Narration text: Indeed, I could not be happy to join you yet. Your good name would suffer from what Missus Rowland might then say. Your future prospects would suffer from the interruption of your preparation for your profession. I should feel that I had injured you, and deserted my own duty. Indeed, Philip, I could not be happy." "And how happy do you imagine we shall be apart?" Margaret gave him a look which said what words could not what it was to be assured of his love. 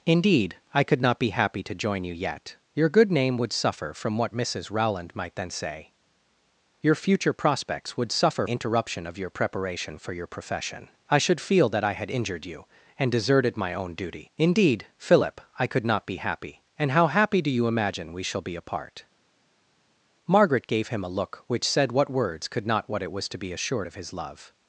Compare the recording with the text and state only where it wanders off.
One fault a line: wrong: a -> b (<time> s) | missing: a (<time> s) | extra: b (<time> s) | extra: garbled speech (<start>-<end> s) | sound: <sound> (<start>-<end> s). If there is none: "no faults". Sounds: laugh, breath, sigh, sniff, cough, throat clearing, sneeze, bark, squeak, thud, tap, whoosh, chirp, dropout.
missing: from the (8.5 s)